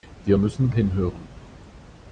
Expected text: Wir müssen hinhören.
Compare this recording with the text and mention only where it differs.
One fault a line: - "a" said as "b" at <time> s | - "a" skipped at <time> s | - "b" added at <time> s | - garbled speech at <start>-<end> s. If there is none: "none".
none